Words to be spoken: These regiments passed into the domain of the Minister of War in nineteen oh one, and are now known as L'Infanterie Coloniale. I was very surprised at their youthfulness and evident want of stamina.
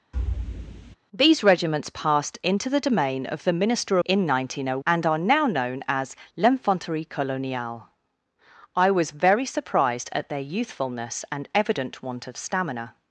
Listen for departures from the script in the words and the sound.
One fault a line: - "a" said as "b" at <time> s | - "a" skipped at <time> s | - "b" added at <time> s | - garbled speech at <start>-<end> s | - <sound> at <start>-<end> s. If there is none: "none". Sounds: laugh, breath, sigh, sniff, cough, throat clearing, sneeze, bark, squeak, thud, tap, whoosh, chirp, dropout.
- thud at 0.1-1.0 s
- "of War" skipped at 4.0 s
- "one" skipped at 4.8 s